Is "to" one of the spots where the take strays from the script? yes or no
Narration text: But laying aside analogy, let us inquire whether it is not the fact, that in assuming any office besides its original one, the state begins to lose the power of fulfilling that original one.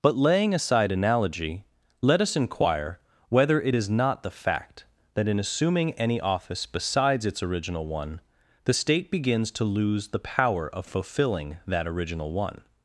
no